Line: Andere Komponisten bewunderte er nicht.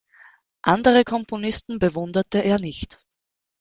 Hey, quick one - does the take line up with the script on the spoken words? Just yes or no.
yes